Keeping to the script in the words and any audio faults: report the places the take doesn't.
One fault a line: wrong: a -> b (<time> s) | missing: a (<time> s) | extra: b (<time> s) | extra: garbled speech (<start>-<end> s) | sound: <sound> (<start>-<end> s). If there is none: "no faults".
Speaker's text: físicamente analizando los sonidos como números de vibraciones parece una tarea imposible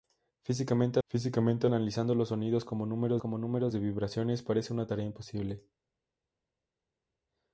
extra: físicamente (1.1 s)
extra: como números (3.2 s)